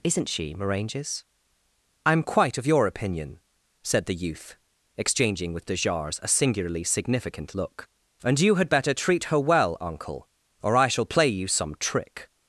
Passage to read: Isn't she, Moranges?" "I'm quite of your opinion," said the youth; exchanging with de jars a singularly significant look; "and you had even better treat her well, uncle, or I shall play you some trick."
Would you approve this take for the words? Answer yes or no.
no